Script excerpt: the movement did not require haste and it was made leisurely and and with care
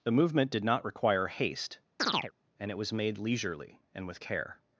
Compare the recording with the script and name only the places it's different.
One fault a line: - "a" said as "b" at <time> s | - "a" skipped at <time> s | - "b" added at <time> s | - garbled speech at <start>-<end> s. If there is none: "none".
- "and" skipped at 4.1 s